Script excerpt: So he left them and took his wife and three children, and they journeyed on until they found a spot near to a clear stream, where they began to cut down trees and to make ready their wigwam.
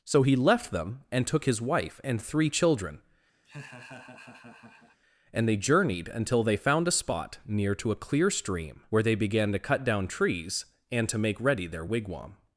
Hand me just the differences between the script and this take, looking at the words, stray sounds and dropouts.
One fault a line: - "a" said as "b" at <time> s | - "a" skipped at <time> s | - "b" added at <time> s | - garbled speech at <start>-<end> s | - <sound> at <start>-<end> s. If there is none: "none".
- laugh at 3.4-5.0 s
- "on" skipped at 6.1 s